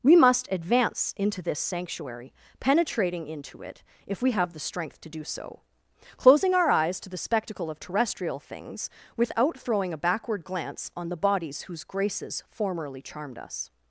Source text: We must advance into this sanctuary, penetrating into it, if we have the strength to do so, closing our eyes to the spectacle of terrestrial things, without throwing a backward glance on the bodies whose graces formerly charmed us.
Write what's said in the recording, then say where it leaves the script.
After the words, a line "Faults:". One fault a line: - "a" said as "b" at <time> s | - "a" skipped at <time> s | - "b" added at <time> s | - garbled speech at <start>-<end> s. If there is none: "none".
We must advance into this sanctuary, penetrating into it, if we have the strength to do so, closing our eyes to the spectacle of terrestrial things, without throwing a backward glance on the bodies whose graces formerly charmed us.
Faults:
none